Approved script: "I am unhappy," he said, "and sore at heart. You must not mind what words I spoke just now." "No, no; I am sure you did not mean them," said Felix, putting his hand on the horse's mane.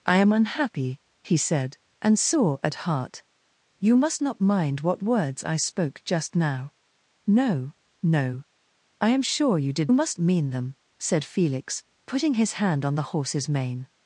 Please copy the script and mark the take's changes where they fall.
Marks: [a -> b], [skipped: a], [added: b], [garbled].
"I am unhappy," he said, "and sore at heart. You must not mind what words I spoke just now." "No, no; I am sure you did [not -> must] mean them," said Felix, putting his hand on the horse's mane.